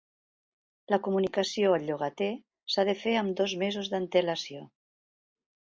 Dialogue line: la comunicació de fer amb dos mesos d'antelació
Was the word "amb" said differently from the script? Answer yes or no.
no